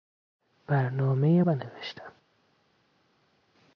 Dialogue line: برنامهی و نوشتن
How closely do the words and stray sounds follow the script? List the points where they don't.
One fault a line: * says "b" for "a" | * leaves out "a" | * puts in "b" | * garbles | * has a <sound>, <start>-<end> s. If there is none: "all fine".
all fine